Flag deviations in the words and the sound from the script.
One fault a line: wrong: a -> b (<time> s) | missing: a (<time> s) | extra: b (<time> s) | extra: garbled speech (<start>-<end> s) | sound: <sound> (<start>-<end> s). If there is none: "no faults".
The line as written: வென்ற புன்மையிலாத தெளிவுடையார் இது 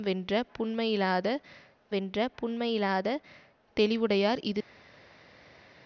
extra: வென்ற புன்மையிலாத (1.9 s)